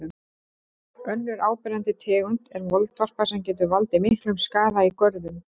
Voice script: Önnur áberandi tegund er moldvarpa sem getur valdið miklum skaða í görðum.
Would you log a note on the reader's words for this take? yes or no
no